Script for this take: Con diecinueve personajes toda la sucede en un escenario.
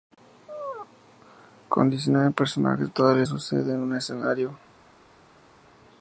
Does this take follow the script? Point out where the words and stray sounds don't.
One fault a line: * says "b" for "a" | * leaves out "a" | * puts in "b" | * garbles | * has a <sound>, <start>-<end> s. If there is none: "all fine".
all fine